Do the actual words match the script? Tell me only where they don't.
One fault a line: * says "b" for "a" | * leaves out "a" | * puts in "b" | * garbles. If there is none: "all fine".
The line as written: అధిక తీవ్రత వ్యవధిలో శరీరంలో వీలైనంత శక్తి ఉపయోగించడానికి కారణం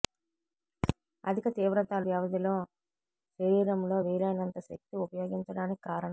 all fine